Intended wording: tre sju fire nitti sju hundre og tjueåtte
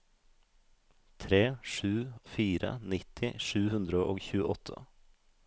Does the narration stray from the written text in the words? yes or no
no